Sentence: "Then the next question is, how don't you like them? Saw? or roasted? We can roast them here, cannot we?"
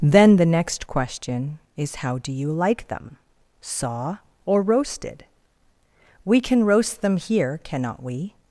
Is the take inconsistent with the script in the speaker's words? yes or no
yes